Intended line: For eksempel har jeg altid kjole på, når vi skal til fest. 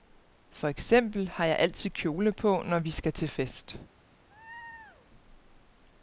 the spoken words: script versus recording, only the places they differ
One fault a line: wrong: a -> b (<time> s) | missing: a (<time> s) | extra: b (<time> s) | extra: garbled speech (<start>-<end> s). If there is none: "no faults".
no faults